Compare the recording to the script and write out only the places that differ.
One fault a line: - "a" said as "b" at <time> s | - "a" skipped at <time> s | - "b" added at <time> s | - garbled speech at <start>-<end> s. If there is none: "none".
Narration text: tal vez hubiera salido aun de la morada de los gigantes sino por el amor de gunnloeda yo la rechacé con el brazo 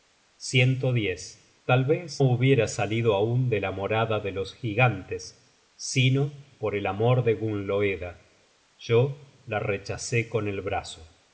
none